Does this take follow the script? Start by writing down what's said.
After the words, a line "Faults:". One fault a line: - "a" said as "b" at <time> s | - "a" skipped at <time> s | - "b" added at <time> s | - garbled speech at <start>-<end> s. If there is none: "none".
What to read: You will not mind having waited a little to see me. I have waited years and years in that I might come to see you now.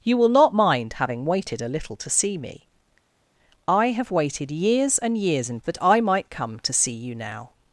You will not mind having waited a little to see me. I have waited years and years in that I might come to see you now.
Faults:
none